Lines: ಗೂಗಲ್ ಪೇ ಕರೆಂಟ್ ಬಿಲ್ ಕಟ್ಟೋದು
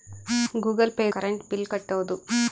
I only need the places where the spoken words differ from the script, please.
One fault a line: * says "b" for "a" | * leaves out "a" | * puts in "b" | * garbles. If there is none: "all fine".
all fine